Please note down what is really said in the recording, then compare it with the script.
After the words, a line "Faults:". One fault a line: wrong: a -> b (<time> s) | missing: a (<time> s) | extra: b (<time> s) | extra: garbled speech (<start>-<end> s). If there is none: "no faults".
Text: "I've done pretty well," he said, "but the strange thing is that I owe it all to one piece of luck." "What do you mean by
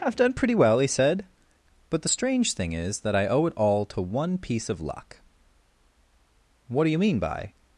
"I've done pretty well," he said, "but the strange thing is that I owe it all to one piece of luck." "What do you mean by
Faults:
no faults